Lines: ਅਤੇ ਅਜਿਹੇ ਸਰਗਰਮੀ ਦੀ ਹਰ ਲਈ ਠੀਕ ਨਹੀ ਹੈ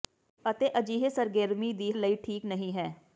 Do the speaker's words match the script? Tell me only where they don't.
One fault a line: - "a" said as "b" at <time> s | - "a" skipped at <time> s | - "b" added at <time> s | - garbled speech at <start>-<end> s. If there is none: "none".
- "ਹਰ" skipped at 1.9 s